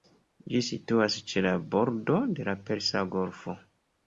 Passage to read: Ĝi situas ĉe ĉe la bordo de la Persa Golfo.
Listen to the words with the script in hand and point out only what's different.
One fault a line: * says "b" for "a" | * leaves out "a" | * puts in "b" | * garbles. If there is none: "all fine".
* leaves out "ĉe"